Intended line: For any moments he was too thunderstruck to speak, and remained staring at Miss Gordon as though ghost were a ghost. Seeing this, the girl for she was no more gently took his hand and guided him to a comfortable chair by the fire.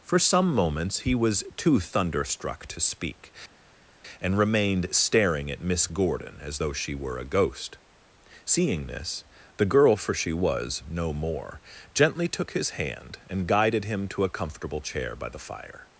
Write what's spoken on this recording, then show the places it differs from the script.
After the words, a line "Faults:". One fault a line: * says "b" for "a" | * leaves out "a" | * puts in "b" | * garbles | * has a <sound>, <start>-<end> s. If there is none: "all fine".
For some moments he was too thunderstruck to speak, and remained staring at Miss Gordon as though she were a ghost. Seeing this, the girl for she was no more gently took his hand and guided him to a comfortable chair by the fire.
Faults:
* says "some" for "any"
* says "she" for "ghost"